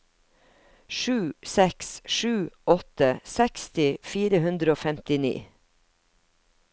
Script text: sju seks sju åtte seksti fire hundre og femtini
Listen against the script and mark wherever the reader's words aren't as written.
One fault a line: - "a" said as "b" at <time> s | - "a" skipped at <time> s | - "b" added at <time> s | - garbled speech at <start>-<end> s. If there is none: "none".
none